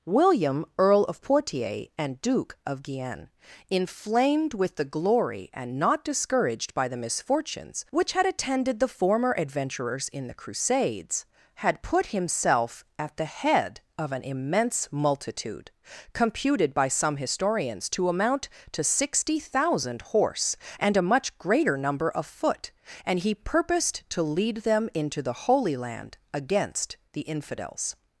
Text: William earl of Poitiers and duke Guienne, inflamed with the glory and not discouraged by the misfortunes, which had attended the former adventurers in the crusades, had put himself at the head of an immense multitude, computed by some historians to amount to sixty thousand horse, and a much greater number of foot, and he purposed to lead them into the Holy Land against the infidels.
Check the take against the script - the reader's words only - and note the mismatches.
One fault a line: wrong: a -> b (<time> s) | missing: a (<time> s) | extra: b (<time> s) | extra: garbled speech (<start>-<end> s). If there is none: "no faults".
extra: of (2.6 s)